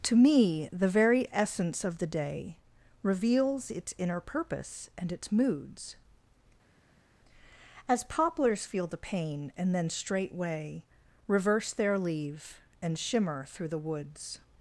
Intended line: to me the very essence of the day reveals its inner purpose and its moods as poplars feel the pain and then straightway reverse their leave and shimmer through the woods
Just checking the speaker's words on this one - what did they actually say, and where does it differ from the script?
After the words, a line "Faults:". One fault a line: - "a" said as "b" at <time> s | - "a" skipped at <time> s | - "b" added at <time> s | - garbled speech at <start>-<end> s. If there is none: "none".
to me the very essence of the day reveals its inner purpose and its moods as poplars feel the pain and then straightway reverse their leave and shimmer through the woods
Faults:
none